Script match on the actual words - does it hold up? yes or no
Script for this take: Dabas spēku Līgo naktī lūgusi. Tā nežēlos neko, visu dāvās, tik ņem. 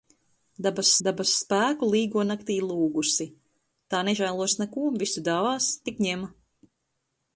no